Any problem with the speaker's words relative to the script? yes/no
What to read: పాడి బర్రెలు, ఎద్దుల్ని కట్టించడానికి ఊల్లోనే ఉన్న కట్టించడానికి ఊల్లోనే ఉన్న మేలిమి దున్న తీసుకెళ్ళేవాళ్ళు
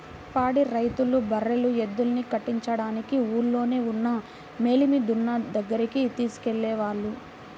yes